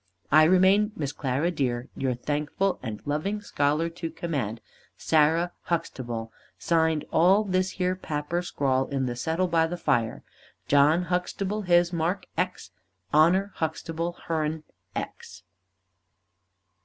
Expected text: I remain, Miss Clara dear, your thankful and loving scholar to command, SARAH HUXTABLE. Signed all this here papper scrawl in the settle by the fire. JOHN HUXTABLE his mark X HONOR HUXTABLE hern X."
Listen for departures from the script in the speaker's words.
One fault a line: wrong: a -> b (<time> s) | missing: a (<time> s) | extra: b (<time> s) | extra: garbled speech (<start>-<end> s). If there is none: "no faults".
no faults